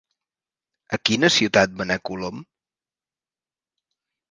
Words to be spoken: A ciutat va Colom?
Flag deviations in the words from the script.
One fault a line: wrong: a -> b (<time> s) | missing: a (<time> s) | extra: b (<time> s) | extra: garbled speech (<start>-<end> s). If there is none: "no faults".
extra: quina (1.1 s)
extra: anar (1.9 s)